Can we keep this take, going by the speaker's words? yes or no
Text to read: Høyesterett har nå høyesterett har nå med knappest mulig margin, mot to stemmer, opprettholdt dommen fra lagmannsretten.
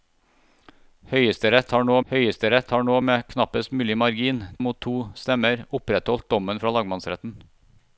yes